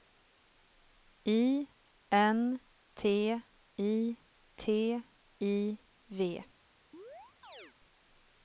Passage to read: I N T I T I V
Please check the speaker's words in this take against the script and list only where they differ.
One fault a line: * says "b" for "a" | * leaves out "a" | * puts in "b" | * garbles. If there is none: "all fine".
all fine